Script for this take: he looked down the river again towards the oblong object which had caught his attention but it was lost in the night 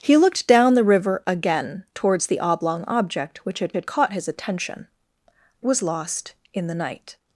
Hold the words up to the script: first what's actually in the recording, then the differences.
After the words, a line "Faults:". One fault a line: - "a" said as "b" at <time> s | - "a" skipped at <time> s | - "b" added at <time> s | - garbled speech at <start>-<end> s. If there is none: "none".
he looked down the river again towards the oblong object which had had caught his attention was lost in the night
Faults:
- "had" added at 3.7 s
- "but it" skipped at 4.9 s